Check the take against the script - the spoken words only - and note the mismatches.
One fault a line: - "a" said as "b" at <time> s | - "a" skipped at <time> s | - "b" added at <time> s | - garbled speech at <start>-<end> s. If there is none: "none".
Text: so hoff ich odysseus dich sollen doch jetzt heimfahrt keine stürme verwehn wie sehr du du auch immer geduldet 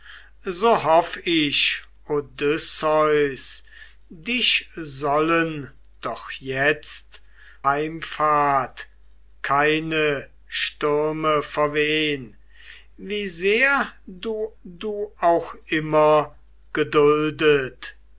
none